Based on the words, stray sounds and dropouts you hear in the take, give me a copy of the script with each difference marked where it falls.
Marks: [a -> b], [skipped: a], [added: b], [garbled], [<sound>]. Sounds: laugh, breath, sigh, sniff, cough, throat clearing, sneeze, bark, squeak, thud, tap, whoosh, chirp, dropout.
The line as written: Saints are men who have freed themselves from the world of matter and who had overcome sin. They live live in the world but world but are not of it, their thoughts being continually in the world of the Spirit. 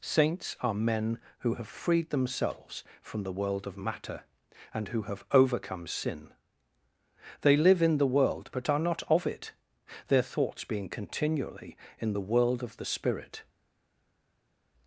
Saints are men who have freed themselves from the world of matter and who [had -> have] overcome sin. They live [skipped: live] in the world but [skipped: world but] are not of it, their thoughts being continually in the world of the Spirit.